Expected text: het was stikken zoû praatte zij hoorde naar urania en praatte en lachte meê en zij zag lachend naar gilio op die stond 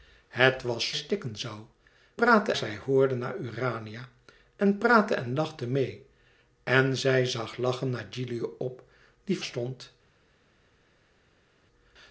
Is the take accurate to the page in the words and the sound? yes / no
yes